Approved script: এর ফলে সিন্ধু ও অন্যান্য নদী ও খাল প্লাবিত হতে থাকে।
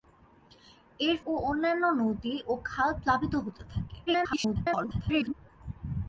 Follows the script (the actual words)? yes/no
no